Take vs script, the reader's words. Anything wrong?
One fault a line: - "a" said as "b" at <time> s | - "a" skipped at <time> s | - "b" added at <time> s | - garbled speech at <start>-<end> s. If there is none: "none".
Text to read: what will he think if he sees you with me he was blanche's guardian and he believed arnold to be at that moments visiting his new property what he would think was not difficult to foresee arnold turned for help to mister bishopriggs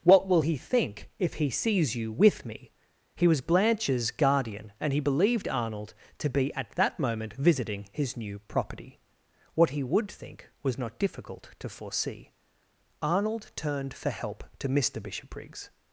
- "moments" said as "moment" at 7.0 s